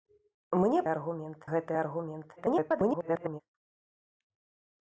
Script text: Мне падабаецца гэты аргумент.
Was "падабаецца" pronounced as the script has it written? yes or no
no